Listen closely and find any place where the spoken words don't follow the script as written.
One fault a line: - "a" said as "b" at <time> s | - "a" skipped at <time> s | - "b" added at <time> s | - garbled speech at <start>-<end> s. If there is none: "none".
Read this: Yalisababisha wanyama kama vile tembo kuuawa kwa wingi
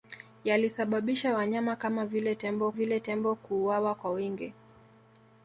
- "vile tembo" added at 2.7 s